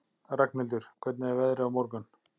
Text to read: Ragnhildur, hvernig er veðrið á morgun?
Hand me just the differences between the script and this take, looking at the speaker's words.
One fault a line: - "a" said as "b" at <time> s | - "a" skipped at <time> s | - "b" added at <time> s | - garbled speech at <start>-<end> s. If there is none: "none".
none